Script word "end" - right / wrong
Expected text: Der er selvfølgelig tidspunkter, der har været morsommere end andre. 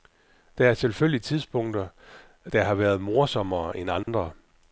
right